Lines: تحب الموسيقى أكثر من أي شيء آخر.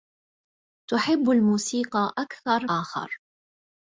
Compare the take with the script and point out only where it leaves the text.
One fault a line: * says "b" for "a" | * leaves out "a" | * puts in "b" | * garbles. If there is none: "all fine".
* leaves out "من أي شيء"